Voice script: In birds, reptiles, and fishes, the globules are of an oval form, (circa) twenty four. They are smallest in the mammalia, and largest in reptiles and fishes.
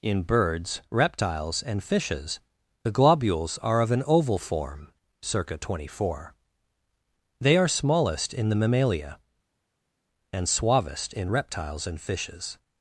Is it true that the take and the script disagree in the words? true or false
true